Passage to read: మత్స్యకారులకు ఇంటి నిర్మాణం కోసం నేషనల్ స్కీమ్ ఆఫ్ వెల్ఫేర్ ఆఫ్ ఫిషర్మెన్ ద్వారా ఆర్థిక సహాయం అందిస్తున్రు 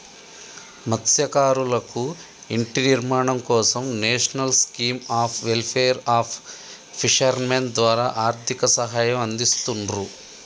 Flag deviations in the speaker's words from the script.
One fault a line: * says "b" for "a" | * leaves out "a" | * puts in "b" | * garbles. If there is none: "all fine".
all fine